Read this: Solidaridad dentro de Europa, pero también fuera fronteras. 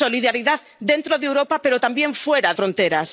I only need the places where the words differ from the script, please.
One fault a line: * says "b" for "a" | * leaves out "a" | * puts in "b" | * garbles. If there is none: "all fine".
all fine